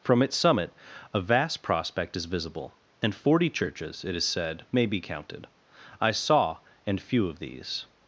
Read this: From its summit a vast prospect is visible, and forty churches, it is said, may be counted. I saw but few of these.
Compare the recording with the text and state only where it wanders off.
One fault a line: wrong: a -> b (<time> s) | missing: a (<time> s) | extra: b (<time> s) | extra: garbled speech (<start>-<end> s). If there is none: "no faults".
wrong: but -> and (6.9 s)